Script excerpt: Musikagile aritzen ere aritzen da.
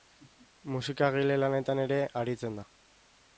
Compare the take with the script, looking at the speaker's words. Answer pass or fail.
fail